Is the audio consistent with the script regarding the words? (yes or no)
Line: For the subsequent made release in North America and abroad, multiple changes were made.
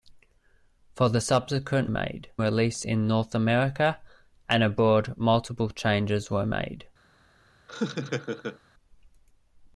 yes